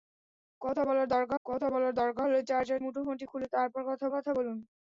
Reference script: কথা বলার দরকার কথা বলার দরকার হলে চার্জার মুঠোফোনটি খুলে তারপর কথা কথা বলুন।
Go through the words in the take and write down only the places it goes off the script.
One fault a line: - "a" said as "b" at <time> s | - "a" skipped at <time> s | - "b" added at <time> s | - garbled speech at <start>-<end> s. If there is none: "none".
none